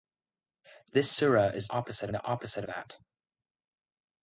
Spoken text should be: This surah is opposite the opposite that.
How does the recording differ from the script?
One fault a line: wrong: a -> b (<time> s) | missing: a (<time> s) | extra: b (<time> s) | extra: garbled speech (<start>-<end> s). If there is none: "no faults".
no faults